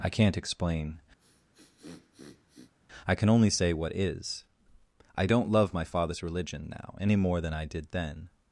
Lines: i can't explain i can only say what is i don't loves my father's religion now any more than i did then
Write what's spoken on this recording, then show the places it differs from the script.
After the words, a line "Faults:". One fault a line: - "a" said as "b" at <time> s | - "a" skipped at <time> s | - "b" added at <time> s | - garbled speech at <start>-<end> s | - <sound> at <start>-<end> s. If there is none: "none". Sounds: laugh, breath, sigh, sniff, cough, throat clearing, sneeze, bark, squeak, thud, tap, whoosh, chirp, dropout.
i can't explain i can only say what is i don't love my father's religion now any more than i did then
Faults:
- sniff at 1.2-2.7 s
- "loves" said as "love" at 5.5 s